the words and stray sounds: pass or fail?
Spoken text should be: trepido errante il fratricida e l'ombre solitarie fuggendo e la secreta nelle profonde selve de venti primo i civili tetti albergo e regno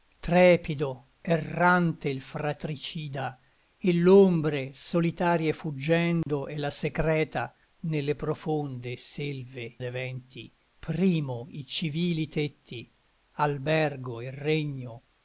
fail